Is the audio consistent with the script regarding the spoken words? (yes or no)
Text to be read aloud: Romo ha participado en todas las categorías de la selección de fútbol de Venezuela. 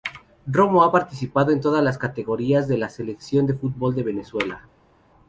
yes